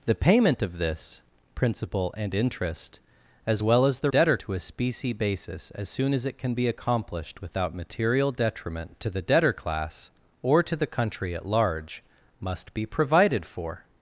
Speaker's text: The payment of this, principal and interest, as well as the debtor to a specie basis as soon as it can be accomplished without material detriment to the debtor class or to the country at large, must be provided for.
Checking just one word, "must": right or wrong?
right